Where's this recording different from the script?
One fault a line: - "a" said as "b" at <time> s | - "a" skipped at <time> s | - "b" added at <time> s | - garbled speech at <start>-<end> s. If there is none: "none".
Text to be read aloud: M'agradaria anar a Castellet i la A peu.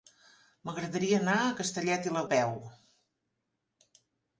none